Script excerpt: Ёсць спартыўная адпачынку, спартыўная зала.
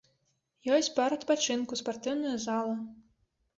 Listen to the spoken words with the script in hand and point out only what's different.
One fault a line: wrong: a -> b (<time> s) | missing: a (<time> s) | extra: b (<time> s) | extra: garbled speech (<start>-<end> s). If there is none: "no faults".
wrong: спартыўная -> парк (0.9 s)